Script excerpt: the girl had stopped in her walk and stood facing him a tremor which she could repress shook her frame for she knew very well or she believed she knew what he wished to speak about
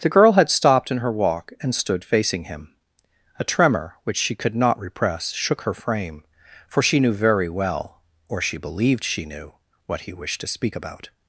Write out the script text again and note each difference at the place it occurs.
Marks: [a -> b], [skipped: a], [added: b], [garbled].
the girl had stopped in her walk and stood facing him a tremor which she could [added: not] repress shook her frame for she knew very well or she believed she knew what he wished to speak about